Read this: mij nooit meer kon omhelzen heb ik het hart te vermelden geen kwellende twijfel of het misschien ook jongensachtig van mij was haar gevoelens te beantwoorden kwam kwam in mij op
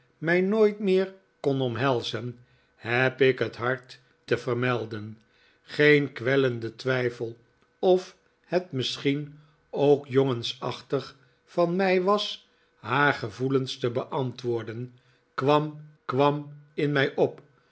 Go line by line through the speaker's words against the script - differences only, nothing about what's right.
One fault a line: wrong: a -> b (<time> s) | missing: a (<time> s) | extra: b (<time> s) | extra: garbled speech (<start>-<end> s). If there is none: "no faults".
no faults